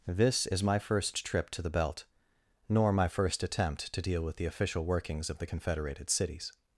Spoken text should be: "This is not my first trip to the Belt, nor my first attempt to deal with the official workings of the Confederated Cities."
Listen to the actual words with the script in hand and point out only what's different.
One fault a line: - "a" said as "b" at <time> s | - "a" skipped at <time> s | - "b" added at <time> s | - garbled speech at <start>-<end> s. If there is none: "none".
- "not" skipped at 0.6 s